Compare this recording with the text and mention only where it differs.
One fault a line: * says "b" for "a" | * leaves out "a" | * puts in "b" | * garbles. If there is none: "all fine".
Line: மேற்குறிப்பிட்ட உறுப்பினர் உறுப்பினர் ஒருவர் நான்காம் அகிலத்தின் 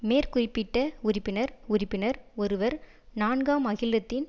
all fine